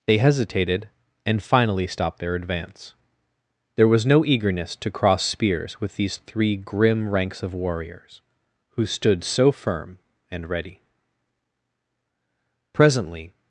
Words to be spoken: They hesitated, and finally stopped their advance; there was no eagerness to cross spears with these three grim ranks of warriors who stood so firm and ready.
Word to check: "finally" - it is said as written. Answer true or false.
true